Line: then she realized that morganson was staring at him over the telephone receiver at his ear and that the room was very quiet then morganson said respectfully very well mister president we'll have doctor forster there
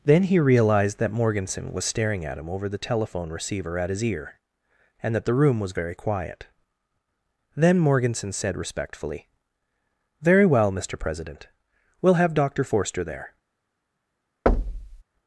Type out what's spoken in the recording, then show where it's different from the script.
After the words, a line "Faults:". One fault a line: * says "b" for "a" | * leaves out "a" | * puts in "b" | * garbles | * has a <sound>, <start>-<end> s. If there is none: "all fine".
then he realized that morganson was staring at him over the telephone receiver at his ear and that the room was very quiet then morganson said respectfully very well mister president we'll have doctor forster there
Faults:
* says "he" for "she"
* has a thud, 14.5-15.0 s